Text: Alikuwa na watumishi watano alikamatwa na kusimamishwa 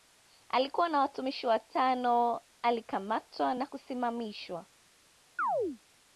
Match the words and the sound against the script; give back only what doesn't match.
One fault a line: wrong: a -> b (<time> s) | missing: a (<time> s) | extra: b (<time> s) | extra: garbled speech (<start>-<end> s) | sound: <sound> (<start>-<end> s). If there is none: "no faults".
sound: chirp (5.4-5.8 s)